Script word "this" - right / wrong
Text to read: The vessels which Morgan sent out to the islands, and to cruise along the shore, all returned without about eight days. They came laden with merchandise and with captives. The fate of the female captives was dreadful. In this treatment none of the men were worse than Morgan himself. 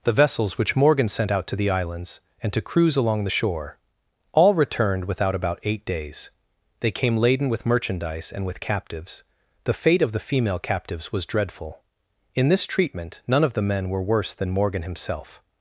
right